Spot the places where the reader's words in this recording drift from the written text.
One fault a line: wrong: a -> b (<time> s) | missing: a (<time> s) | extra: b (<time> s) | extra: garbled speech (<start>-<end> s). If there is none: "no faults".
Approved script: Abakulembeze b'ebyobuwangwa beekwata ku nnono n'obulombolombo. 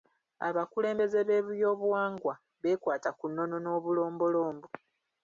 no faults